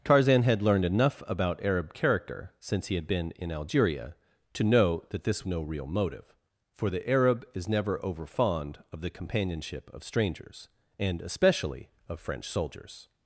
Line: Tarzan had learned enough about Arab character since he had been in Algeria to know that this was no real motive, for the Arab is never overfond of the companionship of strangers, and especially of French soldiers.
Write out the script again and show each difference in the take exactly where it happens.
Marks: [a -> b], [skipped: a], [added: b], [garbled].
Tarzan had learned enough about Arab character since he had been in Algeria to know that this [skipped: was] no real motive, for the Arab is never overfond of the companionship of strangers, and especially of French soldiers.